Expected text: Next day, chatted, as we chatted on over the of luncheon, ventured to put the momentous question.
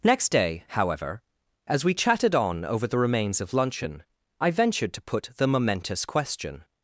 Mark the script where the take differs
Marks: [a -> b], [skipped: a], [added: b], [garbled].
Next day, [chatted, -> however] as we chatted on over the [added: remains] of luncheon, [added: I] ventured to put the momentous question.